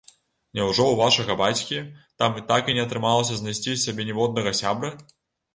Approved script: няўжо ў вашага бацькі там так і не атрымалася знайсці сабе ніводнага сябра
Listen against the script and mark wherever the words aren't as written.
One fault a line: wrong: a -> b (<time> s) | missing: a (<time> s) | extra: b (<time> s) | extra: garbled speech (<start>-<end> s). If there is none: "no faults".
no faults